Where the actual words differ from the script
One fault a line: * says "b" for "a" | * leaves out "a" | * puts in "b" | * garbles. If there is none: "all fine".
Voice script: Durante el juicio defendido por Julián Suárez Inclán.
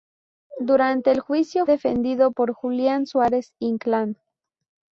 all fine